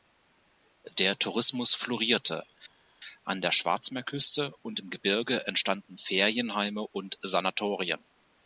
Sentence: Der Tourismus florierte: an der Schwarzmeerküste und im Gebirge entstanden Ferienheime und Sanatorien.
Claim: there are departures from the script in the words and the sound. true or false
false